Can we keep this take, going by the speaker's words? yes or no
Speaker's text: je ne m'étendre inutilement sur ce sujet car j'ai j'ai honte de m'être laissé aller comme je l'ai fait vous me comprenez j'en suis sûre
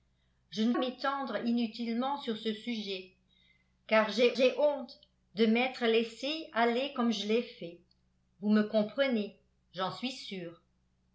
yes